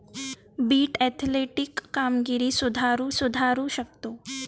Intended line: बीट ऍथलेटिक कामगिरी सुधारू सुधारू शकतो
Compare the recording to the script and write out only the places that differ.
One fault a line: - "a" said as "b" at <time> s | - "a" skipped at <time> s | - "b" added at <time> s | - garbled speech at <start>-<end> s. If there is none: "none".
none